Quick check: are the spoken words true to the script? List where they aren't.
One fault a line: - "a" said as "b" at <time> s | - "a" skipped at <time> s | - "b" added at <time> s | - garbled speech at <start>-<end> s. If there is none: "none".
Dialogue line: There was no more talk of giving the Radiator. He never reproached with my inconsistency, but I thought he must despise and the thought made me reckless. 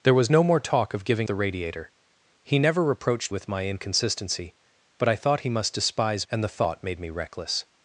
none